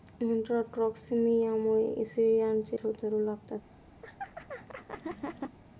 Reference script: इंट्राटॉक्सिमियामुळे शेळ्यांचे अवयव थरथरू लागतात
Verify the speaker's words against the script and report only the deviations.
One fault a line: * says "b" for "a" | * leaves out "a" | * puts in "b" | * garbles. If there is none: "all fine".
* leaves out "अवयव"